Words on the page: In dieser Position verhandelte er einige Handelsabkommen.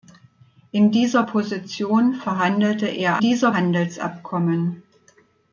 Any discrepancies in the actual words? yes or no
yes